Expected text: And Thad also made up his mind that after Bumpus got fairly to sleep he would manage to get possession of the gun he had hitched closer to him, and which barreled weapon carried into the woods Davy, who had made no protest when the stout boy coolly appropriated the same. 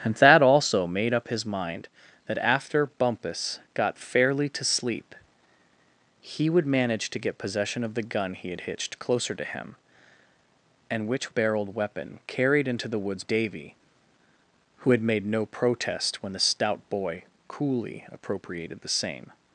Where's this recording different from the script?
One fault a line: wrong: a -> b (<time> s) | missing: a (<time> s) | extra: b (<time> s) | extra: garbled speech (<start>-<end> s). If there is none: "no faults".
no faults